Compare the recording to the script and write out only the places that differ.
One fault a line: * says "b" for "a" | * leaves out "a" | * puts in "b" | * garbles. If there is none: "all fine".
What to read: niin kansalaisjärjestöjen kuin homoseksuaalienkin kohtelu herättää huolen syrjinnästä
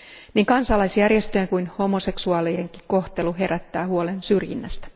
all fine